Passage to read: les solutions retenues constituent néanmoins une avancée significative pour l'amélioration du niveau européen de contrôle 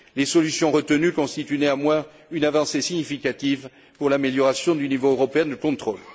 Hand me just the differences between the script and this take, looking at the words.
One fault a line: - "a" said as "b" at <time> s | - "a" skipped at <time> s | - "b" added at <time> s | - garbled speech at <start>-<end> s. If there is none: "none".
none